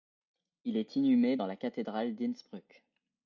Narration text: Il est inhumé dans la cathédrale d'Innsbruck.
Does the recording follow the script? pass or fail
pass